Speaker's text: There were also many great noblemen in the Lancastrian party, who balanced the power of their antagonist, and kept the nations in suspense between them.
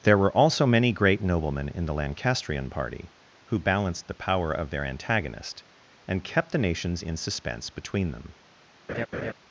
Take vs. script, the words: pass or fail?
pass